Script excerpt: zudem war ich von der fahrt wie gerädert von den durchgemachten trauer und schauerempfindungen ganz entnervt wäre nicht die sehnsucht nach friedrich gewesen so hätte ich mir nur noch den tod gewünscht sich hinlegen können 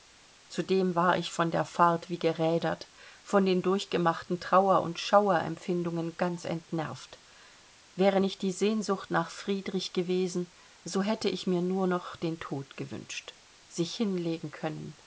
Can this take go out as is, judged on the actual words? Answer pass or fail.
pass